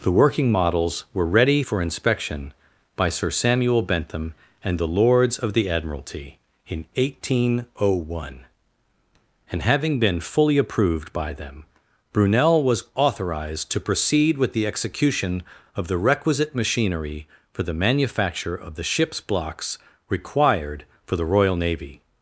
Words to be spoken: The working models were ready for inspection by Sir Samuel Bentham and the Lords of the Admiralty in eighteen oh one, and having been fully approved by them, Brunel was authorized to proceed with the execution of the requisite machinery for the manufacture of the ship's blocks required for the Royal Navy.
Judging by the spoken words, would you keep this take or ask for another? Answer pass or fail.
pass